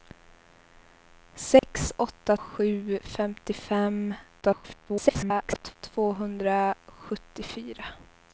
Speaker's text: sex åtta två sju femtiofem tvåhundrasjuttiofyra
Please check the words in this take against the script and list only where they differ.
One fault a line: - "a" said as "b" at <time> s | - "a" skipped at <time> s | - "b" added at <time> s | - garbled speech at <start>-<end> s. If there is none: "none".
- "två" skipped at 2.4 s
- garbled speech at 4.4-5.8 s